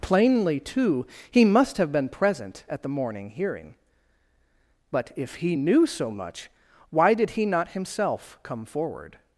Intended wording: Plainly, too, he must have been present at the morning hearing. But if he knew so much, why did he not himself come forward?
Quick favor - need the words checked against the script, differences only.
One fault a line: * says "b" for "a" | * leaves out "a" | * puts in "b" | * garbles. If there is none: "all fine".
all fine